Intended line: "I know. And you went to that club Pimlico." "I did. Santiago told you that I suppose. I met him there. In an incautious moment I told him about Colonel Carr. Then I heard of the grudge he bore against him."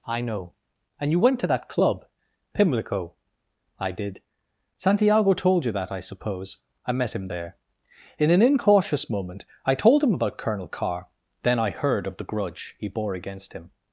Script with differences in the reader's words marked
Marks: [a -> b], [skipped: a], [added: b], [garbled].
"I know. And you went to that club Pimlico." "I did. Santiago told you that I suppose. I met him there. In an incautious moment I told him about Colonel Carr. Then I heard of the grudge he bore against him."